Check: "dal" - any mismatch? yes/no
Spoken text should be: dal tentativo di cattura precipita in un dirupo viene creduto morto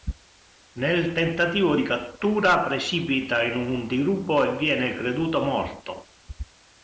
yes